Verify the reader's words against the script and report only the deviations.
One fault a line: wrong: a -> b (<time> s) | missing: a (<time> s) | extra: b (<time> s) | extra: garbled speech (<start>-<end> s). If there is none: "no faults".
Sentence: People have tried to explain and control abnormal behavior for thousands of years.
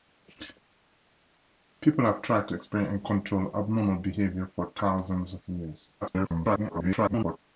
extra: garbled speech (6.0-7.4 s)